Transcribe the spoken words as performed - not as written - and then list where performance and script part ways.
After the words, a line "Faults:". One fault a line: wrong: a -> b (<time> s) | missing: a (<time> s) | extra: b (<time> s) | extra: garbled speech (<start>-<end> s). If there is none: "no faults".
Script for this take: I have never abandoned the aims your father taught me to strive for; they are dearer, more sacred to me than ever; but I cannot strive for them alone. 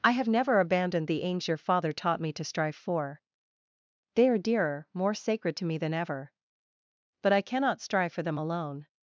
I have never abandoned the aims your father taught me to strive for; they are dearer, more sacred to me than ever; but I cannot strive for them alone.
Faults:
no faults